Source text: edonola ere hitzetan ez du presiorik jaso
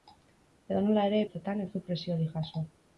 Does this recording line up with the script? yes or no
yes